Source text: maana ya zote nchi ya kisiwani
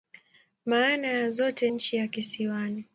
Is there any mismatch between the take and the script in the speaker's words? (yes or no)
no